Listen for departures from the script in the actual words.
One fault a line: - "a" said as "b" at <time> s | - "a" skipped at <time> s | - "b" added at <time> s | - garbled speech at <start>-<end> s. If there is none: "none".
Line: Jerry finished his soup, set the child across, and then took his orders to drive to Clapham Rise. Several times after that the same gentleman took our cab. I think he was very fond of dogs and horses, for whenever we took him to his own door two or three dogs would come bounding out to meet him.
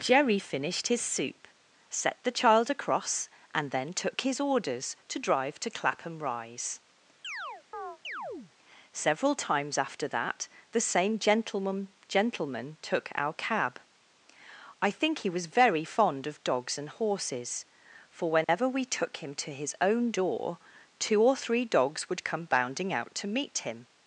- "gentleman" added at 12.1 s